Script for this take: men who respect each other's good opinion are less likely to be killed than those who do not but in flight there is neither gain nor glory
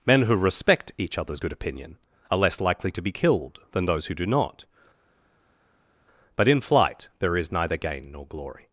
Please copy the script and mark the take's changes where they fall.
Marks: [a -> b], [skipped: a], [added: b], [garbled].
men who respect each other's good opinion are less likely to be killed than those who do not but in flight there is neither gain nor glory